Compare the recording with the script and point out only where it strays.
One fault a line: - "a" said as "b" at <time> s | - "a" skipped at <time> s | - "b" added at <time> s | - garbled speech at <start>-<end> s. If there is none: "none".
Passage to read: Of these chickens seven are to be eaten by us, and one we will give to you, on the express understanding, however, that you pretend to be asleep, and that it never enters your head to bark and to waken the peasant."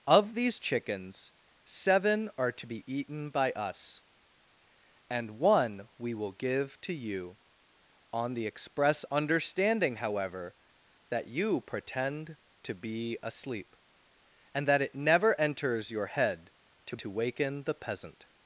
- "bark and" skipped at 17.0 s